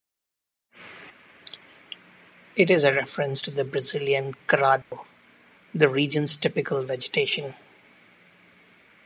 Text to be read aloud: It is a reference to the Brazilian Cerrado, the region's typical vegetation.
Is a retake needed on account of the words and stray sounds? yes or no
yes